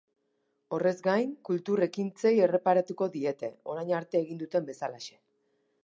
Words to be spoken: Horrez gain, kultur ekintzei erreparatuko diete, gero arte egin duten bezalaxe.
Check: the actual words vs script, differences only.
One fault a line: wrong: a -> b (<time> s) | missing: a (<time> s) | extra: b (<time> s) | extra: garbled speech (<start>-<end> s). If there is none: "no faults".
wrong: gero -> orain (3.7 s)